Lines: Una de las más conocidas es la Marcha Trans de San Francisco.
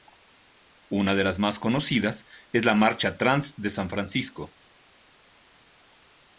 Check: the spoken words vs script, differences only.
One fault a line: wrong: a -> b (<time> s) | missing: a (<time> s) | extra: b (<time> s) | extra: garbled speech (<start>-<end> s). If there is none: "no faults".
no faults